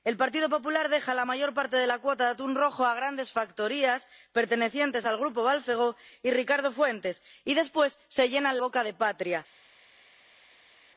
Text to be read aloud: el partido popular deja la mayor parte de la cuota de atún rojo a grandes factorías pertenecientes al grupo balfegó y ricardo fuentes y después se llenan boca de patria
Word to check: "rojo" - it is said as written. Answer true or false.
true